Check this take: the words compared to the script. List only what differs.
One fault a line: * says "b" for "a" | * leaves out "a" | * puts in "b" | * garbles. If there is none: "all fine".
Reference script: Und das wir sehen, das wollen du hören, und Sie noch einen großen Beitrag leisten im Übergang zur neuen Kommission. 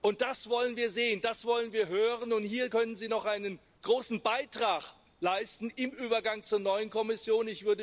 * puts in "wollen"
* says "wir" for "du"
* puts in "hier können"